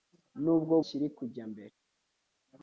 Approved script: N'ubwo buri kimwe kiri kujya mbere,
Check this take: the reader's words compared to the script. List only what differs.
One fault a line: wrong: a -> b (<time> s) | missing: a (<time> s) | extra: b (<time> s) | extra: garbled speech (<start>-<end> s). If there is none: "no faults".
missing: buri kimwe (0.8 s)